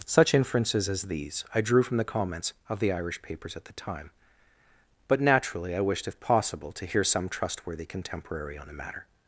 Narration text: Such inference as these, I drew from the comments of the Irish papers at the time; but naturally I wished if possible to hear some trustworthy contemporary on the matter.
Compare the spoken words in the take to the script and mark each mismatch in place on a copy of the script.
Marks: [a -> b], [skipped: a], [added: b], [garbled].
Such [inference -> inferences] as these, I drew from the comments of the Irish papers at the time; but naturally I wished if possible to hear some trustworthy contemporary on the matter.